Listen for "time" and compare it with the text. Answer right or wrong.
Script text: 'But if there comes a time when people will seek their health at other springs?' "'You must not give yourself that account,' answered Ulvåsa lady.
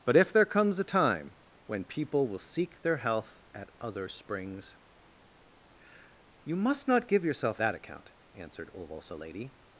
right